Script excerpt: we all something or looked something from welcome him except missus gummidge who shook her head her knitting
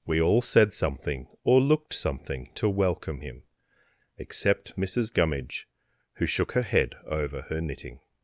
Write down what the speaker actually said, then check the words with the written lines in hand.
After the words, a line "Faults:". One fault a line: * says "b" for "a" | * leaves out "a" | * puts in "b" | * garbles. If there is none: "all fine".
we all said something or looked something to welcome him except missus gummidge who shook her head over her knitting
Faults:
* puts in "said"
* says "to" for "from"
* puts in "over"